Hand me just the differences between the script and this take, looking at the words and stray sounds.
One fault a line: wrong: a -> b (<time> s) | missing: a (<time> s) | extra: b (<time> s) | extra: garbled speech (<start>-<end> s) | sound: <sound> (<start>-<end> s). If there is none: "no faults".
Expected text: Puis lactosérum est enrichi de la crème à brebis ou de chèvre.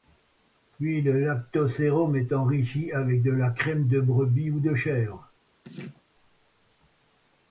extra: le (1.0 s)
extra: avec (2.9 s)
wrong: à -> de (3.9 s)
sound: laugh (5.6-6.0 s)